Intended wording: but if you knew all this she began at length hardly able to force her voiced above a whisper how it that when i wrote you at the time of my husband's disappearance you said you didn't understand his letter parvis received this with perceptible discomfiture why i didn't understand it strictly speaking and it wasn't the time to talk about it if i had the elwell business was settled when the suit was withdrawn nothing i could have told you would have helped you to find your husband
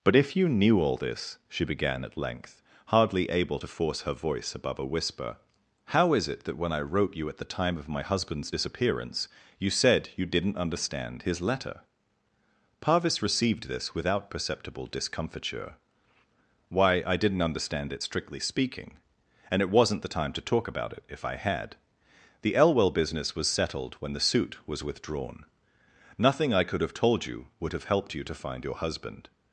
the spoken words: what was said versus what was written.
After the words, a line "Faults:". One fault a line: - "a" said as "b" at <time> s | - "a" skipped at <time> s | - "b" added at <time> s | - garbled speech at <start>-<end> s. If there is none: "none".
but if you knew all this she began at length hardly able to force her voice above a whisper how is it that when i wrote you at the time of my husband's disappearance you said you didn't understand his letter parvis received this without perceptible discomfiture why i didn't understand it strictly speaking and it wasn't the time to talk about it if i had the elwell business was settled when the suit was withdrawn nothing i could have told you would have helped you to find your husband
Faults:
- "voiced" said as "voice" at 4.1 s
- "is" added at 6.1 s
- "with" said as "without" at 13.9 s